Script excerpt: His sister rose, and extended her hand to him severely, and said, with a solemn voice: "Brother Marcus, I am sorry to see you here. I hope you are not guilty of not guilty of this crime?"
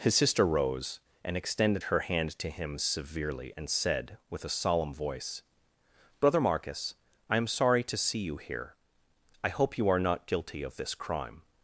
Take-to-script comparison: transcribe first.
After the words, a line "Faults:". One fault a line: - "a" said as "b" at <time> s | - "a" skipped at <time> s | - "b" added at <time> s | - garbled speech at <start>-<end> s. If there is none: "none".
His sister rose, and extended her hand to him severely, and said, with a solemn voice: "Brother Marcus, I am sorry to see you here. I hope you are not guilty of this crime?"
Faults:
- "not guilty of" skipped at 10.8 s